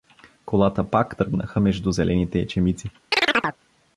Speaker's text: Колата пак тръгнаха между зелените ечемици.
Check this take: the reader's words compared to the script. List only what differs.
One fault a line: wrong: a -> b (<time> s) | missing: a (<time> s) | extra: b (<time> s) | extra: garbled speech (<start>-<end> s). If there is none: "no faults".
no faults